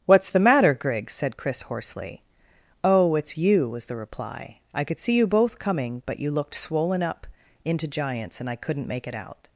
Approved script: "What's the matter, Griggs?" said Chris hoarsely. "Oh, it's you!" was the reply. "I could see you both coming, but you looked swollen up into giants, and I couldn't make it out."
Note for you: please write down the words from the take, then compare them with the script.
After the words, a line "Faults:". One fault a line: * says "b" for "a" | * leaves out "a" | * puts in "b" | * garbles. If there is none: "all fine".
"What's the matter, Griggs?" said Chris hoarsely. "Oh, it's you!" was the reply. "I could see you both coming, but you looked swollen up into giants, and I couldn't make it out."
Faults:
all fine